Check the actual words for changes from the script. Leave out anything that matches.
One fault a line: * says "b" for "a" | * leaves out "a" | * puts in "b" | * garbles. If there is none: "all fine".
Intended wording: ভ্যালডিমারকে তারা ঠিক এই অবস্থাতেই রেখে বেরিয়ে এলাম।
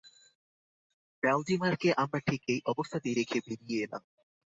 * says "আমরা" for "তারা"